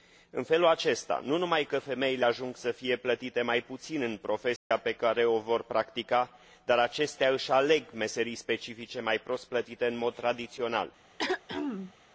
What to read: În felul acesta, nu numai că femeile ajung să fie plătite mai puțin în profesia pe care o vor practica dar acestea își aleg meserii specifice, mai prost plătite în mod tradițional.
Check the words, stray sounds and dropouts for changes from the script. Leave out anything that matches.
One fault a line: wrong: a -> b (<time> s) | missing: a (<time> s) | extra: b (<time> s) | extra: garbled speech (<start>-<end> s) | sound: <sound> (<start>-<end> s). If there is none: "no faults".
sound: dropout (4.6-4.7 s)
sound: throat clearing (11.2-11.9 s)